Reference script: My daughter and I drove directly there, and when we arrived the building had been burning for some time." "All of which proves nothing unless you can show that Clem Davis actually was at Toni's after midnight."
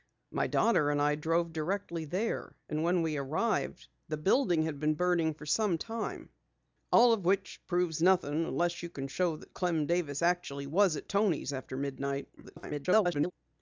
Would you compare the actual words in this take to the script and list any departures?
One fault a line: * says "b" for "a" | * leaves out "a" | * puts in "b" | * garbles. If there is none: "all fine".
* garbles